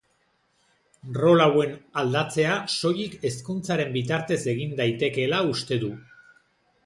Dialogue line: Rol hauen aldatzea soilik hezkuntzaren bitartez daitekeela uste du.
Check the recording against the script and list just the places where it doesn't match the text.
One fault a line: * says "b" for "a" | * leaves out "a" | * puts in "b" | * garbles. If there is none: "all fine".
* puts in "egin"